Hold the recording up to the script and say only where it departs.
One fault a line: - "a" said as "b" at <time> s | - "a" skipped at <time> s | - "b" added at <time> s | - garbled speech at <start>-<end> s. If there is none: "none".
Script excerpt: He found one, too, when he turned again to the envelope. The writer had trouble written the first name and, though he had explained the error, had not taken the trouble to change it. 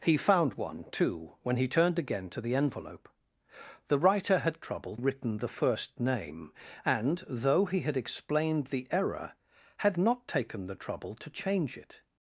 none